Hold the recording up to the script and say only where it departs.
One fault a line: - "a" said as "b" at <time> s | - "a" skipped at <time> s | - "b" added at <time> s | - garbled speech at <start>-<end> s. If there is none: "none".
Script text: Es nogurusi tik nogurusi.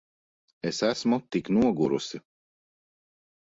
- "nogurusi" said as "esmu" at 0.9 s